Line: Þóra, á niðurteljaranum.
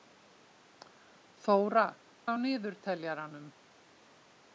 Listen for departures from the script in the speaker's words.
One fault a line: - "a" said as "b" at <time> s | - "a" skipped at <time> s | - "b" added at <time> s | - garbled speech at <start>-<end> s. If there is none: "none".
none